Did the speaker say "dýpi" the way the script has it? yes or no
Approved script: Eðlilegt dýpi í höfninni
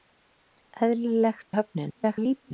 no